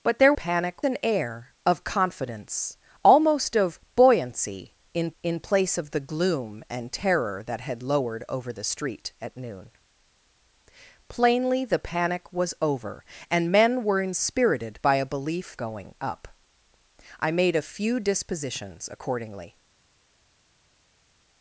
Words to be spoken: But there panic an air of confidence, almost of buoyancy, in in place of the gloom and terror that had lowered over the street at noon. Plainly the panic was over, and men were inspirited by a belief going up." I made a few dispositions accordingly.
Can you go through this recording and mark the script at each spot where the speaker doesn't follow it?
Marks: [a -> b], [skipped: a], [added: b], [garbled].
But there panic an air of confidence, almost of buoyancy, in in place of the gloom and terror that had lowered over the street at noon. Plainly the panic was over, and men were inspirited by a belief going up." I made a few dispositions accordingly.